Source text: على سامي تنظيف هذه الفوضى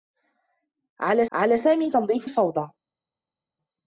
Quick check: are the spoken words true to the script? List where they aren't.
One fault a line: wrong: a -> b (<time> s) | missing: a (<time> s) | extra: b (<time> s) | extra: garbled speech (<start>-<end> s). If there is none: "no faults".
extra: على (1.3 s)
missing: هذه (2.3 s)